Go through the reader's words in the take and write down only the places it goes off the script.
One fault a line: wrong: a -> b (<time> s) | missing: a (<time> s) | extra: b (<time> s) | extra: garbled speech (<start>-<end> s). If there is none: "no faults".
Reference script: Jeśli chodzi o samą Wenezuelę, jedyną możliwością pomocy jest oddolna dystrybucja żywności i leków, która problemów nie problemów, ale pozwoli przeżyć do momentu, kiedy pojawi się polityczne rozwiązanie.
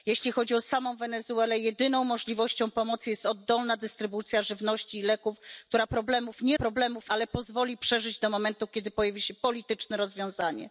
no faults